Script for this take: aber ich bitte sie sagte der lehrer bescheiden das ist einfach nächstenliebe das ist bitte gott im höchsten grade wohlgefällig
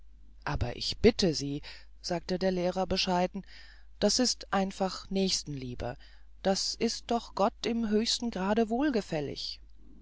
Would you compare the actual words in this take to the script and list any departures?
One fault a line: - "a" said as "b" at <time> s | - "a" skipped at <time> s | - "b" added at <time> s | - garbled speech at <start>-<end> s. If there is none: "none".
- "bitte" said as "doch" at 7.1 s